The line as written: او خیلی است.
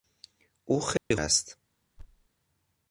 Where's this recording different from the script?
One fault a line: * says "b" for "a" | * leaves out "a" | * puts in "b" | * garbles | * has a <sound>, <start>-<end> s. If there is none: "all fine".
* has a dropout, 1.0-1.1 s
* has a thud, 2.0-2.3 s